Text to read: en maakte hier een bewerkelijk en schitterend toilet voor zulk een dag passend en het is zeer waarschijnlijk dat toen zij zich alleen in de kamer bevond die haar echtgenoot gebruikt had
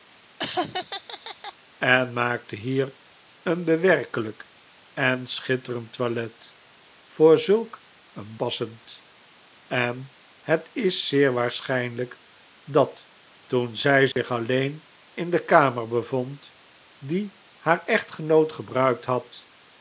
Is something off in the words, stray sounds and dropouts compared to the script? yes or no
yes